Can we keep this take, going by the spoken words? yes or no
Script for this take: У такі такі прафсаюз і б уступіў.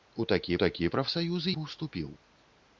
yes